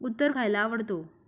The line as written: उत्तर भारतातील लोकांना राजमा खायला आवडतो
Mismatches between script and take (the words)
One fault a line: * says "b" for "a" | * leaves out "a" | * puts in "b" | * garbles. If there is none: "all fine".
* leaves out "भारतातील लोकांना राजमा"